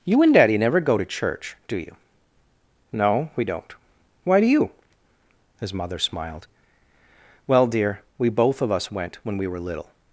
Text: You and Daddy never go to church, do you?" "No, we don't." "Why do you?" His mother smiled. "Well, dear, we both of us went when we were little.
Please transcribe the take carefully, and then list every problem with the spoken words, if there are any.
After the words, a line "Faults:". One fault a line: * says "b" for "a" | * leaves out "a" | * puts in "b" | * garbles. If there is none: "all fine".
You and Daddy never go to church, do you?" "No, we don't." "Why do you?" His mother smiled. "Well, dear, we both of us went when we were little.
Faults:
all fine